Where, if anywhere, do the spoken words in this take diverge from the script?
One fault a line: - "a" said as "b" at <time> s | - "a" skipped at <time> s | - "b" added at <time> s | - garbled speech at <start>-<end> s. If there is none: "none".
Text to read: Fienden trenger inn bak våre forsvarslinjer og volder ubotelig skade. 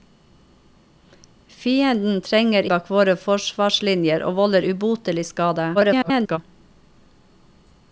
- "inn" skipped at 2.7 s
- garbled speech at 5.7-6.4 s